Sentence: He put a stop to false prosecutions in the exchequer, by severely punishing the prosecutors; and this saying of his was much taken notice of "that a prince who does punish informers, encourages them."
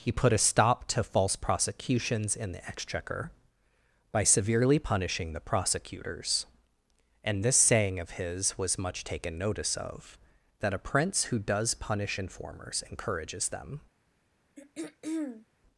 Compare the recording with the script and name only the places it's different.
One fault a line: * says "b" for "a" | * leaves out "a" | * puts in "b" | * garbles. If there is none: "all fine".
all fine